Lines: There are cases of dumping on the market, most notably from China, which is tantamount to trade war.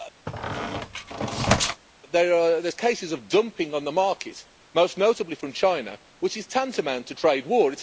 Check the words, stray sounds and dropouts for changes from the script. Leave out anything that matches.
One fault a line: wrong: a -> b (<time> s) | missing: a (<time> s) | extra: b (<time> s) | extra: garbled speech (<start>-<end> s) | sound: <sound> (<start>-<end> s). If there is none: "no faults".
sound: squeak (0.3-1.8 s)